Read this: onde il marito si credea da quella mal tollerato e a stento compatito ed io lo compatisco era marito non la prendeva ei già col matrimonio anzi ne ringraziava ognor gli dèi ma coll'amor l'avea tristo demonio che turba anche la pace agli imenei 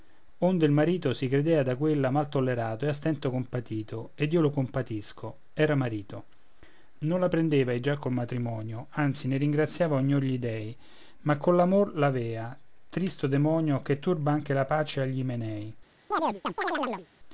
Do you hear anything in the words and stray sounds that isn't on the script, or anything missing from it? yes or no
yes